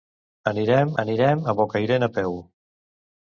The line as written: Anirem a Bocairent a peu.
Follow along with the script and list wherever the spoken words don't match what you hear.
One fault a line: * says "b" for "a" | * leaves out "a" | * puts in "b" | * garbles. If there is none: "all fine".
* puts in "anirem"